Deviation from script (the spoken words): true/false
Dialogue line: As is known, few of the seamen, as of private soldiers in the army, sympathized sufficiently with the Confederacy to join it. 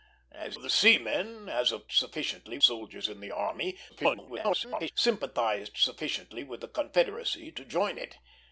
true